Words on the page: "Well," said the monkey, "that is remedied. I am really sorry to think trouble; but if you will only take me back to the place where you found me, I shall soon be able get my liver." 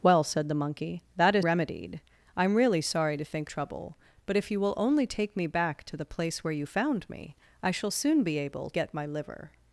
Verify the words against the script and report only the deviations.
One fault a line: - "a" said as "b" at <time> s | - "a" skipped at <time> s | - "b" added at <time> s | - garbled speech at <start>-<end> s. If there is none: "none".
none